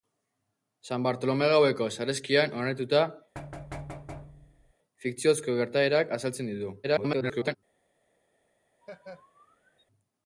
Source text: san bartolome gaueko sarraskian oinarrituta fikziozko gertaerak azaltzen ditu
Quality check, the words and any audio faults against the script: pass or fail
fail